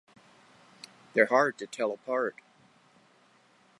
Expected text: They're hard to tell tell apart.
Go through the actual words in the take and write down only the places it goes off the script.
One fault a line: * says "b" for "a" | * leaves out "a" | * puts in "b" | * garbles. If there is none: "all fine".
* leaves out "tell"